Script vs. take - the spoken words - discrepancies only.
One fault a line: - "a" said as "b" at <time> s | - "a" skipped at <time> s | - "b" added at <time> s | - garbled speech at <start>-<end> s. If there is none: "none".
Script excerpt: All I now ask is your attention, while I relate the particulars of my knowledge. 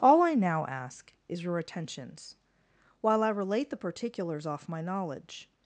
- "attention" said as "attentions" at 1.6 s
- "of" said as "off" at 4.5 s